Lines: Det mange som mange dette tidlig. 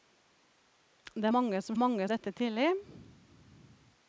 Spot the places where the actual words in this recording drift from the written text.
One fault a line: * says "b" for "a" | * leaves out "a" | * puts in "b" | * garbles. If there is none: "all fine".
all fine